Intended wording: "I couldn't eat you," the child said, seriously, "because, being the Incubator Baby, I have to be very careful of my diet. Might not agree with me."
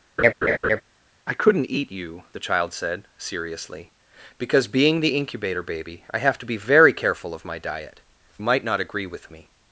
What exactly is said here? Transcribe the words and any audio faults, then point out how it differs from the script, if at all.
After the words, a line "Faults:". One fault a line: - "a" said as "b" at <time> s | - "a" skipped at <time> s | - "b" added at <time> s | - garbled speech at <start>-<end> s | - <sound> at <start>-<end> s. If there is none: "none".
"I couldn't eat you," the child said, seriously, "because, being the Incubator Baby, I have to be very careful of my diet. Might not agree with me."
Faults:
- laugh at 0.2-0.8 s